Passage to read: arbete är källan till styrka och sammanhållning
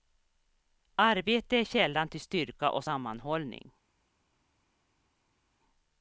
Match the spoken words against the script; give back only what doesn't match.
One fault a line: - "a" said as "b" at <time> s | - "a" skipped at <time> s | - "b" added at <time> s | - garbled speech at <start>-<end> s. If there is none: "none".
none